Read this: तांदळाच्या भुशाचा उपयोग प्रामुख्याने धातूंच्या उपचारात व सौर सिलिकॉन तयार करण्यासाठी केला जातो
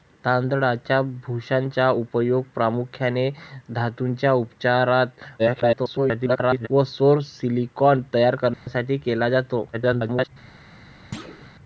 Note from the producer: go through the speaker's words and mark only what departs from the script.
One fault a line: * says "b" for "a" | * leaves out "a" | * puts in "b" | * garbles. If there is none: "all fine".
* garbles
* garbles